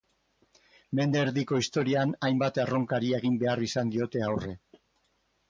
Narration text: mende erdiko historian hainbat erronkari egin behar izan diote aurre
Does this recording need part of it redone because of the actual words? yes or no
no